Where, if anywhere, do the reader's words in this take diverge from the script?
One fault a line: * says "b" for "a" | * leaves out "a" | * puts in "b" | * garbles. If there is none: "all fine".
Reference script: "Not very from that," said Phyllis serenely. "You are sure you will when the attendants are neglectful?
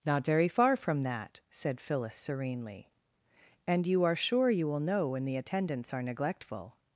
* puts in "far"
* puts in "And"
* puts in "know"